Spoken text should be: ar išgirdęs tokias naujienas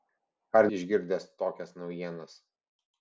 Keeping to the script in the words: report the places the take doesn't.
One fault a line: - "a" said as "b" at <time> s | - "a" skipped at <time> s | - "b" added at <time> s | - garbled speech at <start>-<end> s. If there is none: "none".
none